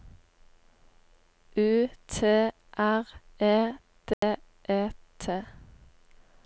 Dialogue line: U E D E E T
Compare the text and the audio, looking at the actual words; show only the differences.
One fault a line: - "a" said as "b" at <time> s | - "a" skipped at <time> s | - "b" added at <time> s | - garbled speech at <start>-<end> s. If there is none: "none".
- "T R" added at 2.1 s
- "E" skipped at 4.9 s